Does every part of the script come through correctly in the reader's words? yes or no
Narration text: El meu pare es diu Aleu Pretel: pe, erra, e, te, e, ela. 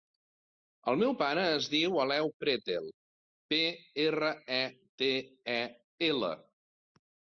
yes